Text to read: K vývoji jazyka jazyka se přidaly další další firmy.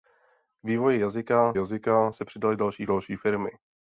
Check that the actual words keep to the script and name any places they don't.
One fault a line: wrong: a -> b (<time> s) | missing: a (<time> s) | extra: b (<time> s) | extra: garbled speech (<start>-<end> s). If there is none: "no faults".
no faults